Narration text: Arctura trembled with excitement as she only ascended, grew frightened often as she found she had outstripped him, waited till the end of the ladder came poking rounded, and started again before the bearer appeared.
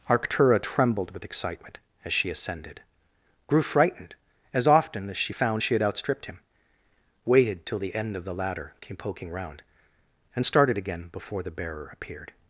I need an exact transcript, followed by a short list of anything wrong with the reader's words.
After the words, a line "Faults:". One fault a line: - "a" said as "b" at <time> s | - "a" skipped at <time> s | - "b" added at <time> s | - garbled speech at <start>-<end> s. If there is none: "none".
Arctura trembled with excitement as she ascended, grew frightened as often as she found she had outstripped him, waited till the end of the ladder came poking round, and started again before the bearer appeared.
Faults:
- "only" skipped at 2.3 s
- "as" added at 4.5 s
- "rounded" said as "round" at 9.3 s